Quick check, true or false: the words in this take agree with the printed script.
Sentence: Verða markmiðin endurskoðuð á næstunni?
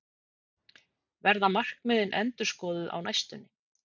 true